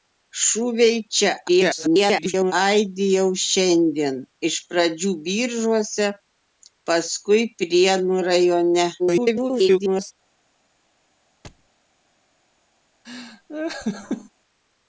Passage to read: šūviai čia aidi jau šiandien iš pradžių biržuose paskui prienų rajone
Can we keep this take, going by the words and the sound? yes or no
no